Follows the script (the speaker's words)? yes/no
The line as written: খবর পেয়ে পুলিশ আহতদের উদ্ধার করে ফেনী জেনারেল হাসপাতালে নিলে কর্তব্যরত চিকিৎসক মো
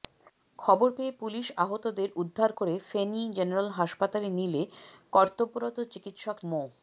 yes